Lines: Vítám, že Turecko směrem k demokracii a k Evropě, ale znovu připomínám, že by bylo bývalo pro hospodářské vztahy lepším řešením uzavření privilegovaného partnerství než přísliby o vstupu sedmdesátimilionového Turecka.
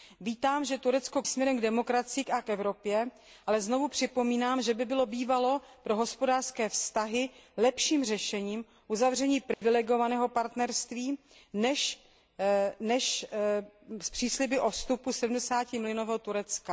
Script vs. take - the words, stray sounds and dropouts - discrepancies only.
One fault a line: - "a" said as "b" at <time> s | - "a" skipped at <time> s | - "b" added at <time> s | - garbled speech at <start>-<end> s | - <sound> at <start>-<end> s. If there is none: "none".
- dropout at 9.5-9.6 s